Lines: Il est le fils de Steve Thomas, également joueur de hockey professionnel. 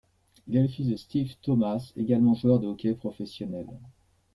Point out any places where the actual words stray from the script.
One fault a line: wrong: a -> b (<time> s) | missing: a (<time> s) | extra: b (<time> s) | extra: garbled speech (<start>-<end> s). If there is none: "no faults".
no faults